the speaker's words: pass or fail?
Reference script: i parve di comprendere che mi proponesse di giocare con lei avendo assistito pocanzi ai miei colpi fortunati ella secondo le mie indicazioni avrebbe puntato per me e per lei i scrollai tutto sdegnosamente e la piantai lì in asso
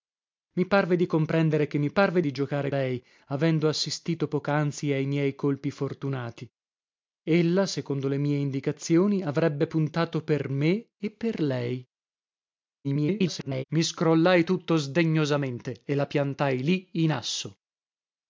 fail